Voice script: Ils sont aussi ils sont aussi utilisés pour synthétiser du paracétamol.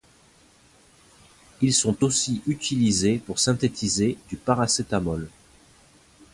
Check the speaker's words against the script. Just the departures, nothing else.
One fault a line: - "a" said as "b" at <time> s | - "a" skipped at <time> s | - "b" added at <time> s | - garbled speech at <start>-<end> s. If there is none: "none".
- "ils sont aussi" skipped at 2.4 s